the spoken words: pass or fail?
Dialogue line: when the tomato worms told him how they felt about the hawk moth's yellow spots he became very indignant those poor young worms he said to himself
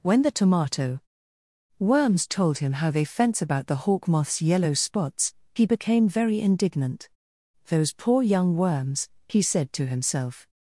fail